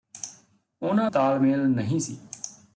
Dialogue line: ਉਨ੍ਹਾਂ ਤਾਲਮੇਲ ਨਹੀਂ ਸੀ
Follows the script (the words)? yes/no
yes